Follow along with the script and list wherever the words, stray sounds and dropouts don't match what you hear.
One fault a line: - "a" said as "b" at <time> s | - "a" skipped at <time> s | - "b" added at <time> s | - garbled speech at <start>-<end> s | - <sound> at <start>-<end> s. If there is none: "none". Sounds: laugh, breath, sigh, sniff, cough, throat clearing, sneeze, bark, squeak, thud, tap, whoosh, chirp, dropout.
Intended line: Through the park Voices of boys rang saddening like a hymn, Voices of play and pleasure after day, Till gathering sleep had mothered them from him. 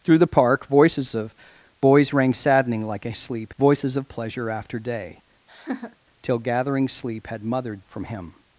- "hymn" said as "sleep" at 3.1 s
- "play and" skipped at 4.1 s
- laugh at 5.5-6.0 s
- "them" skipped at 7.8 s